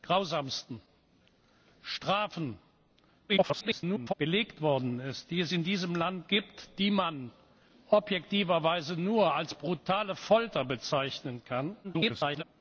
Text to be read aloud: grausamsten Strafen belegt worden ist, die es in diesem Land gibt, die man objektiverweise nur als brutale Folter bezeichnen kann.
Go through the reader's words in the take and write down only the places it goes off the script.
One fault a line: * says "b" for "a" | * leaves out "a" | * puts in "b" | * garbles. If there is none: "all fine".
* garbles
* garbles